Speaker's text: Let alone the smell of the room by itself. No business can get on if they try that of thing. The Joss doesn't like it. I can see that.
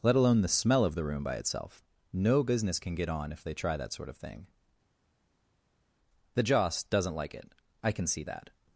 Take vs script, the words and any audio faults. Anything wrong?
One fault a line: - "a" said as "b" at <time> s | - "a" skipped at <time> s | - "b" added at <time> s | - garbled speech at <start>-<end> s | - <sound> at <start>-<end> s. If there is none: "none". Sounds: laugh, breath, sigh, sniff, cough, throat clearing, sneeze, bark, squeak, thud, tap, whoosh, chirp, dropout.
- "sort" added at 3.9 s